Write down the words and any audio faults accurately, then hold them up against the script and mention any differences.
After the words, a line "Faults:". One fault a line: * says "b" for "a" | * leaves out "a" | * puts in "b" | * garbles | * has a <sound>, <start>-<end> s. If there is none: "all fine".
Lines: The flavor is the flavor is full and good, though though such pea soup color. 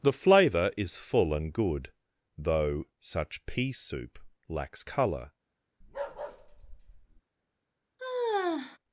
The flavor is full and good, though such pea soup lacks color.
Faults:
* leaves out "the flavor is"
* leaves out "though"
* puts in "lacks"
* has a bark, 5.8-7.2 s
* has a sigh, 8.0-8.8 s